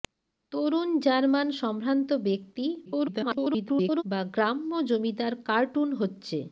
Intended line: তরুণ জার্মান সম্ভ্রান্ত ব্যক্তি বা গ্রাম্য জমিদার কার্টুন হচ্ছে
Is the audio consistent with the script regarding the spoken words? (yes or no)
no